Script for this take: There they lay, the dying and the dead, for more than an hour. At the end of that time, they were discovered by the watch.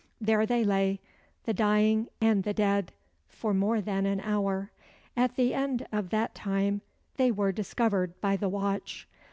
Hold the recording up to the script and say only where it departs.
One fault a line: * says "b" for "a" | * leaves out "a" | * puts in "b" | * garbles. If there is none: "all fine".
all fine